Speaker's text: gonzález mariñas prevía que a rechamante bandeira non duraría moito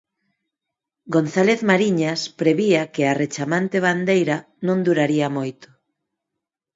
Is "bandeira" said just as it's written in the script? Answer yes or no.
yes